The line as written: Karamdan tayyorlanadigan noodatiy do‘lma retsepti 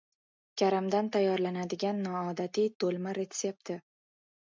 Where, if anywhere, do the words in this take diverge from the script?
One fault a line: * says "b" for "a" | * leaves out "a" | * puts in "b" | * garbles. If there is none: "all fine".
all fine